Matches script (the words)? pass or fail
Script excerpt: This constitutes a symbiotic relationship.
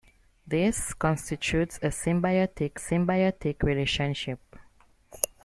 fail